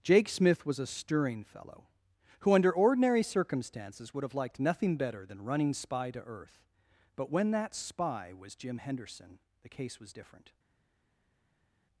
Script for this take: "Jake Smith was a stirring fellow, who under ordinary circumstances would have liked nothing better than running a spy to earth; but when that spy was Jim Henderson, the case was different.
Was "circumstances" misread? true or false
false